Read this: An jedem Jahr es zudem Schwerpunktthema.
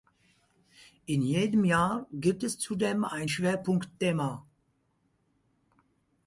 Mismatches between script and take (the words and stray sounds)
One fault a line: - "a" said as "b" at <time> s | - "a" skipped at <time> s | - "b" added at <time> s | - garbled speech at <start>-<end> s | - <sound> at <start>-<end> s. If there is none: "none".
- "An" said as "In" at 1.1 s
- "gibt" added at 2.1 s
- "ein" added at 3.0 s